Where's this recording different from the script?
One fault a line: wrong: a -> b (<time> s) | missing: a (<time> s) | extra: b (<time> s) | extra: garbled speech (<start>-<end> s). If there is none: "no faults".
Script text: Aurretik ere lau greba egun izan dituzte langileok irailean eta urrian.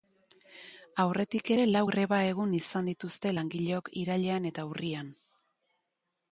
no faults